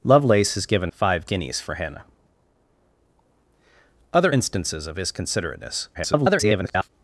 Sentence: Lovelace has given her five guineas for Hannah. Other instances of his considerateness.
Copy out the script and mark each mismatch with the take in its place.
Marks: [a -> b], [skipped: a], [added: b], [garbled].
Lovelace has given [skipped: her] five guineas for Hannah. Other instances of his considerateness. [garbled]